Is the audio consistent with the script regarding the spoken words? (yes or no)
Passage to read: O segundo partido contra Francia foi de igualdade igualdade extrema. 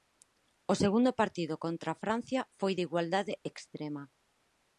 no